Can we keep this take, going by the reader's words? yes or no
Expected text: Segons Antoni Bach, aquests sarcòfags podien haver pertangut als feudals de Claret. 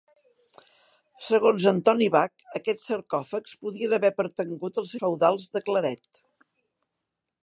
yes